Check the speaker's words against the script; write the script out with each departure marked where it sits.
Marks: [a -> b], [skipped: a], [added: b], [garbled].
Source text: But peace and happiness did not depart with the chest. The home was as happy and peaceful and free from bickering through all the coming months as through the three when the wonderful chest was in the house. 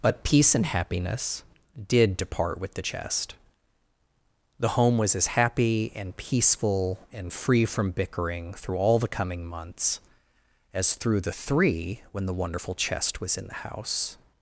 But peace and happiness did [skipped: not] depart with the chest. The home was as happy and peaceful and free from bickering through all the coming months as through the three when the wonderful chest was in the house.